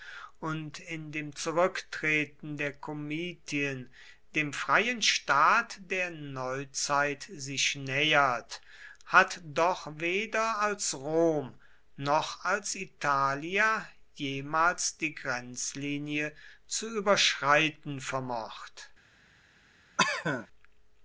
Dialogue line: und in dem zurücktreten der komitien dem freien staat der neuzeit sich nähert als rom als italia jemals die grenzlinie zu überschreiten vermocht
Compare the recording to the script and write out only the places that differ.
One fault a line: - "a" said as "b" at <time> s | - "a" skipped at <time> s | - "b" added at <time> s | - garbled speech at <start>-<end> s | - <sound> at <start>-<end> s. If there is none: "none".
- "hat doch weder" added at 9.1 s
- "noch" added at 12.0 s
- cough at 20.0-20.5 s